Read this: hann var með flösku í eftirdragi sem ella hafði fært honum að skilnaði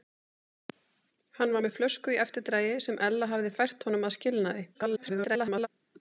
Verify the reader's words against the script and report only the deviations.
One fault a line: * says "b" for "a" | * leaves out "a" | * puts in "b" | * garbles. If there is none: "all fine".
* garbles